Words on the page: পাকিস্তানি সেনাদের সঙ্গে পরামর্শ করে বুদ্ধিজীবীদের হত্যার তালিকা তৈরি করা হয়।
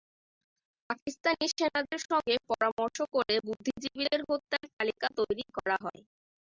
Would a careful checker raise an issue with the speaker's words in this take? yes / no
no